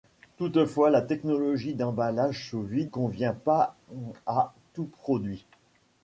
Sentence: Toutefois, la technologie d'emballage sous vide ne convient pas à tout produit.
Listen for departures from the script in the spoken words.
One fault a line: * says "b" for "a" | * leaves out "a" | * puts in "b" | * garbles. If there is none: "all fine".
* leaves out "ne"